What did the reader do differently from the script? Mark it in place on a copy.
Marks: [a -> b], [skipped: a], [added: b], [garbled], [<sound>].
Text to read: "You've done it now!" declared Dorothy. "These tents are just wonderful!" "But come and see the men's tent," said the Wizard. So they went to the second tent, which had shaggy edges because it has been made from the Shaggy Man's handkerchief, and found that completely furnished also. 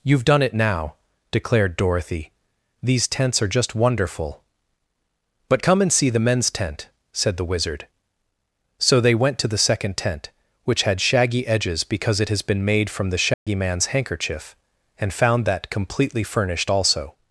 "You've done it now!" declared Dorothy. "These tents are just wonderful!" "But come and see the men's tent," said the Wizard. So they went to the second tent, which had shaggy edges because it has been made from the Shaggy [dropout] Man's handkerchief, and found that completely furnished also.